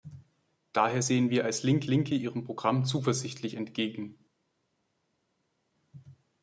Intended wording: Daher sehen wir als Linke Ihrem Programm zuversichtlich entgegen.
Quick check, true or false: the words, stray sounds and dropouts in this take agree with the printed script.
false